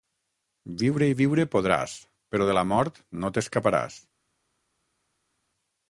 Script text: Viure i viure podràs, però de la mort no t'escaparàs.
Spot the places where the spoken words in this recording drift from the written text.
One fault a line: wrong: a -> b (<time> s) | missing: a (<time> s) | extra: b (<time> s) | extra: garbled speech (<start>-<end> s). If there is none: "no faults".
no faults